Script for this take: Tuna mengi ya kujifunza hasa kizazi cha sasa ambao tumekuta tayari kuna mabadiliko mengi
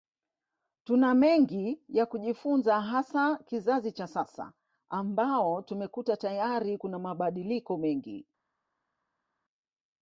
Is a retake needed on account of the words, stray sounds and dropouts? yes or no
no